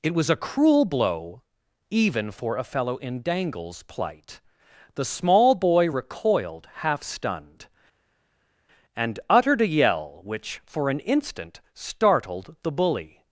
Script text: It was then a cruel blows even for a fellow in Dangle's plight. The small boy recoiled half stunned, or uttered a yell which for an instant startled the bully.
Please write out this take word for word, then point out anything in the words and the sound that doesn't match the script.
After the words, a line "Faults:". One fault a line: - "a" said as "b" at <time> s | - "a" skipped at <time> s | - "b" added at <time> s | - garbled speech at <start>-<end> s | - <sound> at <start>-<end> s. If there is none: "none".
It was a cruel blow even for a fellow in Dangle's plight. The small boy recoiled half stunned, and uttered a yell which for an instant startled the bully.
Faults:
- "then" skipped at 0.3 s
- "blows" said as "blow" at 0.8 s
- "or" said as "and" at 8.9 s